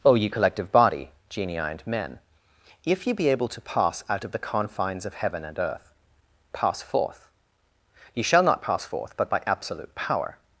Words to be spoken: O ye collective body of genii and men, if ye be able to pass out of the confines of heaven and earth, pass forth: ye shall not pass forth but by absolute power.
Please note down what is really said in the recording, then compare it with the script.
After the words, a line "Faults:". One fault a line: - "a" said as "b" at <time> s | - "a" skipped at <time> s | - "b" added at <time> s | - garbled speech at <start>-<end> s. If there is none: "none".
O ye collective body genii and men, if ye be able to pass out of the confines of heaven and earth, pass forth: ye shall not pass forth but by absolute power.
Faults:
- "of" skipped at 1.1 s